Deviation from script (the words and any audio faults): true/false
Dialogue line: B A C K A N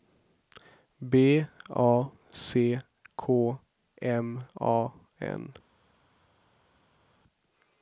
true